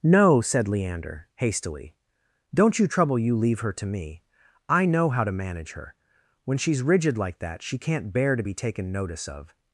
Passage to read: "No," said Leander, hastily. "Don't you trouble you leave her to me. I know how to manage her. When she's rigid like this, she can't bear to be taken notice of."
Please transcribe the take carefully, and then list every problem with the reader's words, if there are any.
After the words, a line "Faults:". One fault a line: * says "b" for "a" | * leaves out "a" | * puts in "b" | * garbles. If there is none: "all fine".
"No," said Leander, hastily. "Don't you trouble you leave her to me. I know how to manage her. When she's rigid like that, she can't bear to be taken notice of."
Faults:
* says "that" for "this"